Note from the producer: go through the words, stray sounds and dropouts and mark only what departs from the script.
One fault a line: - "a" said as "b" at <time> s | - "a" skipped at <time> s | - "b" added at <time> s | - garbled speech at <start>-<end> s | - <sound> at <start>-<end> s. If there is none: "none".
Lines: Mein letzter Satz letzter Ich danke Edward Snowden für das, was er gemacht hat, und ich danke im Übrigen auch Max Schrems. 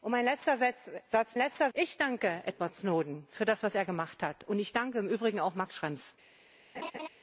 - laugh at 6.7-7.1 s